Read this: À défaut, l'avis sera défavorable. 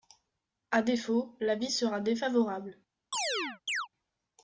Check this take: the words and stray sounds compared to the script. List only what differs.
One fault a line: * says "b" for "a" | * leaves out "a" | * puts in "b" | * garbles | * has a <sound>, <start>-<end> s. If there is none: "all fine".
* has a chirp, 3.1-3.9 s